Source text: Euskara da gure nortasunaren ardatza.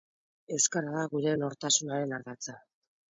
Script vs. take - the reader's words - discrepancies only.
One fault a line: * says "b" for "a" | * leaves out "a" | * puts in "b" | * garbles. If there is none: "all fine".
all fine